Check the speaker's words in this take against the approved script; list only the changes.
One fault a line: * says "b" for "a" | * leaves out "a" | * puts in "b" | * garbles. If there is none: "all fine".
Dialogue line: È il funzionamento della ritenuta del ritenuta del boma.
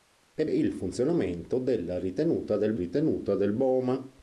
all fine